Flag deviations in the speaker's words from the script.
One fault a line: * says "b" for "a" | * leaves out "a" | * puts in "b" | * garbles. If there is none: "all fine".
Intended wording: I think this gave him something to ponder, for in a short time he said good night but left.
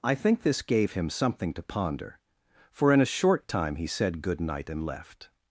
* says "and" for "but"